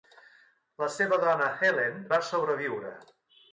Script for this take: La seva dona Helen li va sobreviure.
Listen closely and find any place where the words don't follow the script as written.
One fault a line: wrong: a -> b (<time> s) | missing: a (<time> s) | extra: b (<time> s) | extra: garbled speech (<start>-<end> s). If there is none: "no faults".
missing: li (2.0 s)